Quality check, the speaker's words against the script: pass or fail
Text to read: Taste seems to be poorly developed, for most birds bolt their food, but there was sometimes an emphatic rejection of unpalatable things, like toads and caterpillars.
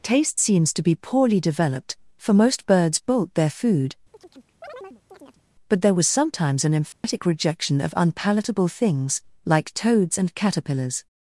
pass